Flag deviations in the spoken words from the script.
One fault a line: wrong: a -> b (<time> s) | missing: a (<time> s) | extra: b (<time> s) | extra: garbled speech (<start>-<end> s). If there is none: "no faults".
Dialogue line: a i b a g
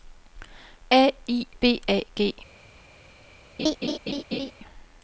no faults